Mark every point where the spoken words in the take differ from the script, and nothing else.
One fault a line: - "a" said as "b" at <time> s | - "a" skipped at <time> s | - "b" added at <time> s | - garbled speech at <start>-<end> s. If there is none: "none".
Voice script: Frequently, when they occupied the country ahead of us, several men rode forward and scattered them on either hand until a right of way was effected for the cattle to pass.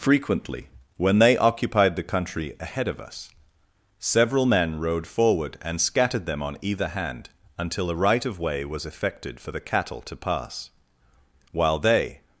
- "While they" added at 11.5 s